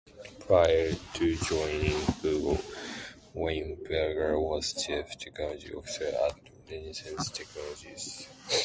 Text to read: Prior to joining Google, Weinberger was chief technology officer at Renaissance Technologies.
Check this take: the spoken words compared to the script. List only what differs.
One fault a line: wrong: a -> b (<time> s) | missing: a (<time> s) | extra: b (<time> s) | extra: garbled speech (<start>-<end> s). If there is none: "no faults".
no faults